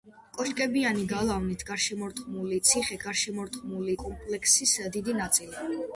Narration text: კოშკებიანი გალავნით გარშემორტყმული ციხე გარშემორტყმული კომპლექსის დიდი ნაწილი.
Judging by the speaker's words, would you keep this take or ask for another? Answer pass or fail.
pass